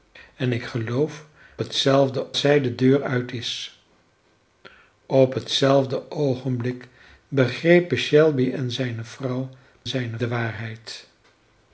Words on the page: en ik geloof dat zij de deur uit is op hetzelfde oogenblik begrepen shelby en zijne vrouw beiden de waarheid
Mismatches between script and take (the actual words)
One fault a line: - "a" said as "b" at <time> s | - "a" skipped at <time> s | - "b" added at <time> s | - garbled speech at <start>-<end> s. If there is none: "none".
- "dat" said as "hetzelfde" at 1.6 s
- "beiden" said as "zijne" at 9.9 s